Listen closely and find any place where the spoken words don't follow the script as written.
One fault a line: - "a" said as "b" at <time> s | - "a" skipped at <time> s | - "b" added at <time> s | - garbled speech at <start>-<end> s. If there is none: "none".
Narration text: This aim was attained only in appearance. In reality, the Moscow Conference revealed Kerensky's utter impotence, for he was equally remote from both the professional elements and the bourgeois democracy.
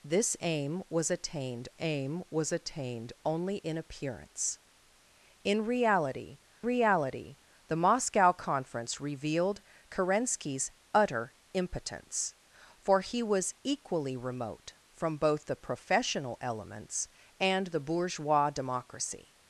- "aim was attained" added at 1.8 s
- "reality" added at 6.6 s